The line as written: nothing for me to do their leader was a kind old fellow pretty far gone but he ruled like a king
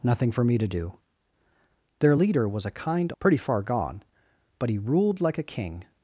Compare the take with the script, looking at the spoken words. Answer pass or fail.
fail